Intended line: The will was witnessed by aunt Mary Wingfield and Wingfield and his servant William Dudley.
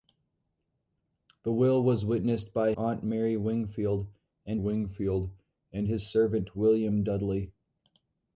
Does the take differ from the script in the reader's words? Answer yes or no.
no